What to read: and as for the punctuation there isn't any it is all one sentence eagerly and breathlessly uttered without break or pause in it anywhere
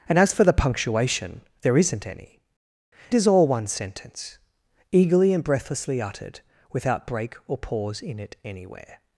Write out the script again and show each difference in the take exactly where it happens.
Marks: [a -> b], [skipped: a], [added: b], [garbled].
and as for the punctuation there isn't any [skipped: it] is all one sentence eagerly and breathlessly uttered without break or pause in it anywhere